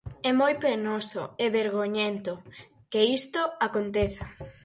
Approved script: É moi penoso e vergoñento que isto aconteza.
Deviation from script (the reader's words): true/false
false